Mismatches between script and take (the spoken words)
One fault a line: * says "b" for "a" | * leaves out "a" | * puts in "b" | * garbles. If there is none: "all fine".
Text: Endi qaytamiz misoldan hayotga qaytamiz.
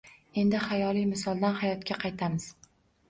* says "xayoliy" for "qaytamiz"